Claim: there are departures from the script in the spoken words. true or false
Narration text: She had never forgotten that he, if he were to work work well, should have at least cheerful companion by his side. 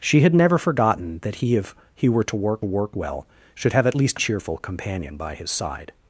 false